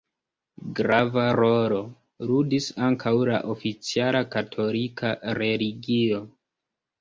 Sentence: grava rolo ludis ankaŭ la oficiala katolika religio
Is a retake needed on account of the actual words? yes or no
no